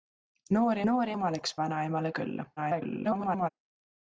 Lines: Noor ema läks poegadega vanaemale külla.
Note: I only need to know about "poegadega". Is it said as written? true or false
false